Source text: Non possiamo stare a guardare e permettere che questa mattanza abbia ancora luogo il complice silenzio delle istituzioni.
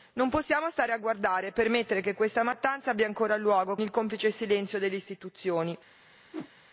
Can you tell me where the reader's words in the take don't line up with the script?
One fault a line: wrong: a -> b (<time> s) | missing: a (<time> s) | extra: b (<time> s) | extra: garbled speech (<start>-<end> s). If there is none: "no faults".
no faults